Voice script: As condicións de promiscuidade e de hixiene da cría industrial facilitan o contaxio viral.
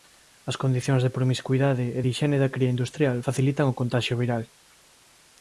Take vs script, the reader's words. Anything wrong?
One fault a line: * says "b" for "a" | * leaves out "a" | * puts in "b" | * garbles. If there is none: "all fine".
all fine